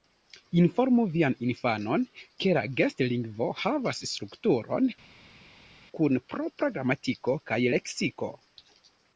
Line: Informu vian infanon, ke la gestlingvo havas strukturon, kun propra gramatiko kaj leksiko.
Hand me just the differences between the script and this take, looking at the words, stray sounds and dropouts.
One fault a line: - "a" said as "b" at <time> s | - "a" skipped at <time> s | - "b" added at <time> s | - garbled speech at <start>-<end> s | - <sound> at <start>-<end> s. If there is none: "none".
none